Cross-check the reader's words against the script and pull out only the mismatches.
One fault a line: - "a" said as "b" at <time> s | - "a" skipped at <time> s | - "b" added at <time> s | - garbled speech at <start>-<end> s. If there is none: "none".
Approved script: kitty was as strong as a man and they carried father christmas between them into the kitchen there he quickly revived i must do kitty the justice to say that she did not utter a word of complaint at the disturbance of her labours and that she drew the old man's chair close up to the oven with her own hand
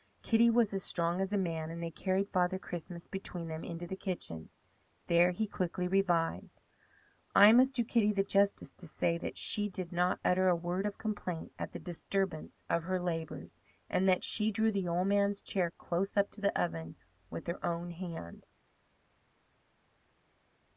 none